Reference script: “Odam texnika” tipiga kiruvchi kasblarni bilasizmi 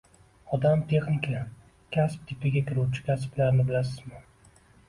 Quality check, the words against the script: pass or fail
fail